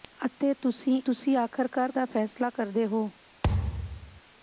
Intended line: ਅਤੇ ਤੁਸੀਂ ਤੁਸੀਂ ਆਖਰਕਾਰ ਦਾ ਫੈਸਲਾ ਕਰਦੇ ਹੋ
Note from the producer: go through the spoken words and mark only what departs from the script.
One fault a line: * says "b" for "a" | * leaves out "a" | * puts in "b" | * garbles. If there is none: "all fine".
all fine